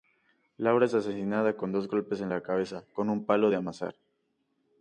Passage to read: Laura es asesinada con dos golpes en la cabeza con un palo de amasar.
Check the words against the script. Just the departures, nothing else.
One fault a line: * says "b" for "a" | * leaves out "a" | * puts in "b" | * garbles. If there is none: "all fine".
all fine